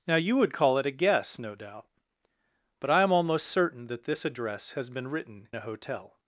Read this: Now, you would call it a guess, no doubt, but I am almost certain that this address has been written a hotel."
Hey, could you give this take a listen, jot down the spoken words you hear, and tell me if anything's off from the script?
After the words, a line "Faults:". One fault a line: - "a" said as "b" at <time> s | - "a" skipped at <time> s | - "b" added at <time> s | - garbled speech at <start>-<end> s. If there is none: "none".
Now, you would call it a guess, no doubt, but I am almost certain that this address has been written a hotel."
Faults:
none